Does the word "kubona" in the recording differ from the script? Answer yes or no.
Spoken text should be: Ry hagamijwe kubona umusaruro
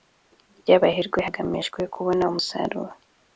no